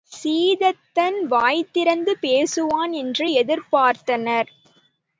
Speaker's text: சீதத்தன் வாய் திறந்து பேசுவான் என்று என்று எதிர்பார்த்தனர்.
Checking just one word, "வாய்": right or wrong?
right